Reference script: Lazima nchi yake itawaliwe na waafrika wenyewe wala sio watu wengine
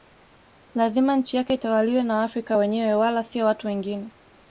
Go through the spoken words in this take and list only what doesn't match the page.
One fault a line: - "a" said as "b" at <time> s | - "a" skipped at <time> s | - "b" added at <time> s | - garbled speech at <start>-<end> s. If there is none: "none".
none